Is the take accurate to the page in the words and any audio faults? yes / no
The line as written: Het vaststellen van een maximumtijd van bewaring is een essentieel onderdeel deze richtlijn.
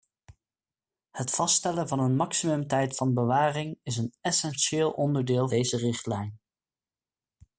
yes